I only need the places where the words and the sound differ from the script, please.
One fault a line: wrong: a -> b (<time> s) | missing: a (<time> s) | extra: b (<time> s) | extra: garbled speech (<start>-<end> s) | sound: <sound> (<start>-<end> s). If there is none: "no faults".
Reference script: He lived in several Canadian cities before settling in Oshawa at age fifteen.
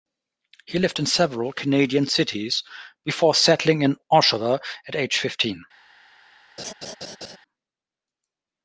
sound: laugh (6.6-7.4 s)